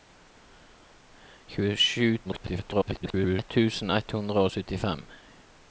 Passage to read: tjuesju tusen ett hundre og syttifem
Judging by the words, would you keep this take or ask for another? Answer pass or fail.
fail